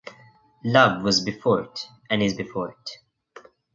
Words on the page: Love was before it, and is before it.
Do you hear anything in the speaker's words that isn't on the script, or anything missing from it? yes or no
no